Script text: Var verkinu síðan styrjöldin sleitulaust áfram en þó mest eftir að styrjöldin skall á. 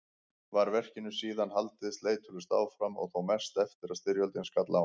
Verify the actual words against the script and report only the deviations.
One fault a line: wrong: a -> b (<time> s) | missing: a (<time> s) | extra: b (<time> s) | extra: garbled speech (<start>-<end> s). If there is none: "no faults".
wrong: styrjöldin -> haldið (1.6 s)
wrong: en -> og (3.0 s)